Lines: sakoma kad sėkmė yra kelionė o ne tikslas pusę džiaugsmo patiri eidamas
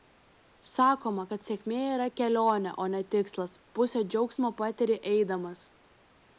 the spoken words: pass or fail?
pass